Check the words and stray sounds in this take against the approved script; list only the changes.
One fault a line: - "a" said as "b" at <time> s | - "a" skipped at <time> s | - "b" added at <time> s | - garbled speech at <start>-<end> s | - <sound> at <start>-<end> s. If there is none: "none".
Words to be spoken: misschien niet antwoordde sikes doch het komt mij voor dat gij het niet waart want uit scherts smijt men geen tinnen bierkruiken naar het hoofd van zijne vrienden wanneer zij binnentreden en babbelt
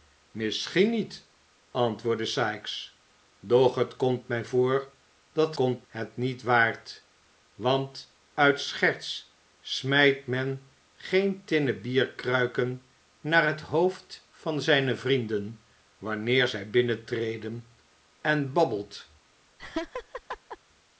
- "gij" said as "komt" at 5.5 s
- laugh at 19.6-20.6 s